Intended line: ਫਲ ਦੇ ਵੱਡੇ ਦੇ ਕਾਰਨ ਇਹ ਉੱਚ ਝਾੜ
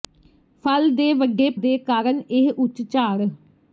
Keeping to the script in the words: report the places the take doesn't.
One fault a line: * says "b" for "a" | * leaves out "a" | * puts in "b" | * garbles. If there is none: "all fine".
all fine